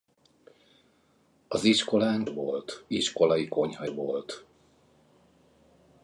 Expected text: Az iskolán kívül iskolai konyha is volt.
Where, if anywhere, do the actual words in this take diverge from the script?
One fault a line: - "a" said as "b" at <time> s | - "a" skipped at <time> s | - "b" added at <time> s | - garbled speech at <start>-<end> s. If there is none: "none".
- "kívül" said as "volt" at 2.2 s
- "is" skipped at 3.9 s